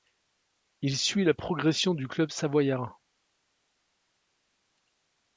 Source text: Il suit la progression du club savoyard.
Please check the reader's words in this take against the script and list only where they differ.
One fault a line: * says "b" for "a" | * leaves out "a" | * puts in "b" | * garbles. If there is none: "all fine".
all fine